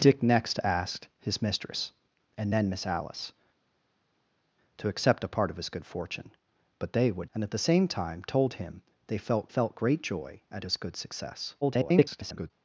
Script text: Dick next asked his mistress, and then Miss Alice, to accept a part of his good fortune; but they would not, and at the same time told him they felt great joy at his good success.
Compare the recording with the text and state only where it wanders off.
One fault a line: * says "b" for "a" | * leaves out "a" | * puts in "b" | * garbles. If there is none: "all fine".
* leaves out "not"
* puts in "felt"
* garbles